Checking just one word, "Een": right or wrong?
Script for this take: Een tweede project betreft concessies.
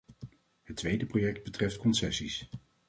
wrong